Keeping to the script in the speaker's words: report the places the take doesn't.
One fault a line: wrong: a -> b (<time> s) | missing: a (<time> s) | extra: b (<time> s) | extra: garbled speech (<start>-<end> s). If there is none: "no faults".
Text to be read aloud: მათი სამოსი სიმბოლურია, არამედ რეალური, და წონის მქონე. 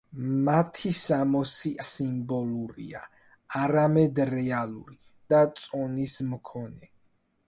no faults